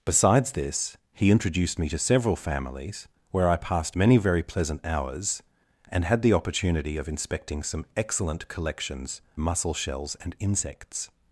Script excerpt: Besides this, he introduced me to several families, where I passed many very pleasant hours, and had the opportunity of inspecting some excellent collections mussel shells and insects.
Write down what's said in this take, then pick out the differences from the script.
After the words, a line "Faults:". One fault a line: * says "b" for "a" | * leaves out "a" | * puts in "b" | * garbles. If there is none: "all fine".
Besides this, he introduced me to several families, where I passed many very pleasant hours, and had the opportunity of inspecting some excellent collections mussel shells and insects.
Faults:
all fine